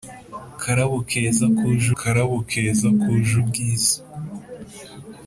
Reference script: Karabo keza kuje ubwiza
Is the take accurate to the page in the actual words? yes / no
no